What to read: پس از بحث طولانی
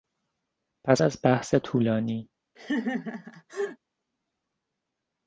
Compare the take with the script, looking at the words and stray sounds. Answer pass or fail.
fail